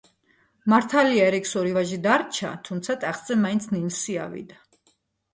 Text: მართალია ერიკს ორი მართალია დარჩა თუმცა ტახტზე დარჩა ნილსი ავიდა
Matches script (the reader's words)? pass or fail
fail